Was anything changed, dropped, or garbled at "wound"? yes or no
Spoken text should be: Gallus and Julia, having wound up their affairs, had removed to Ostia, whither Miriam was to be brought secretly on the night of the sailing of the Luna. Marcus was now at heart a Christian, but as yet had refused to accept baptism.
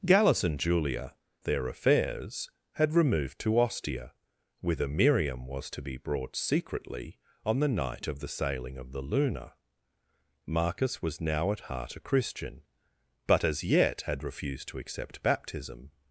yes